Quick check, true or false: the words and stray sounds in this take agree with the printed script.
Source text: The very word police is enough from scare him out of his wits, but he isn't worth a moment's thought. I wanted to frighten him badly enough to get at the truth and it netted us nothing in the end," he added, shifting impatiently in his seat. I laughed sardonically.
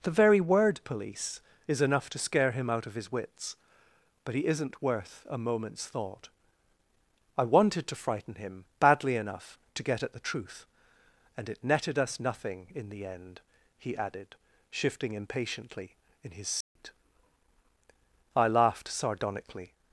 false